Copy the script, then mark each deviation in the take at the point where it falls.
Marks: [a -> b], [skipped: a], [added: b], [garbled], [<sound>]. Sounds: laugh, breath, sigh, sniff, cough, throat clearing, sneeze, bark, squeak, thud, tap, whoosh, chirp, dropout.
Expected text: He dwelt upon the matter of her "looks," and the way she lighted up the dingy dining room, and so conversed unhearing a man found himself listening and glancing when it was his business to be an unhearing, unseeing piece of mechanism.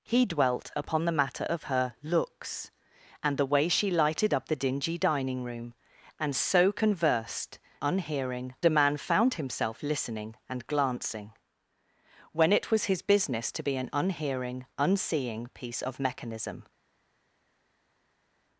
He dwelt upon the matter of her "looks," and the way she lighted up the dingy dining room, and so conversed unhearing a man found himself listening and glancing when it was his business to be an unhearing, unseeing piece of mechanism.